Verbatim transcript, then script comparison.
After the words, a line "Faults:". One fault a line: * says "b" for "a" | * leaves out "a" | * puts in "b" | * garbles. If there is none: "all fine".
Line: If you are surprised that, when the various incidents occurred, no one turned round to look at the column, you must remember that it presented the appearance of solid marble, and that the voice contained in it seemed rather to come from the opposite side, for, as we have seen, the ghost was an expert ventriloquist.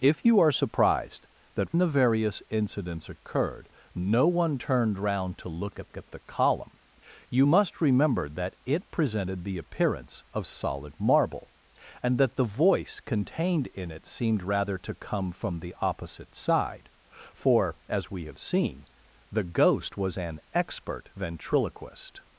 If you are surprised that, the various incidents occurred, no one turned round to look at at the column, you must remember that it presented the appearance of solid marble, and that the voice contained in it seemed rather to come from the opposite side, for, as we have seen, the ghost was an expert ventriloquist.
Faults:
* leaves out "when"
* puts in "at"